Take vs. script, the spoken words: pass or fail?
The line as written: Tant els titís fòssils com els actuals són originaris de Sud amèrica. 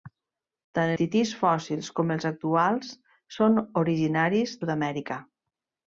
fail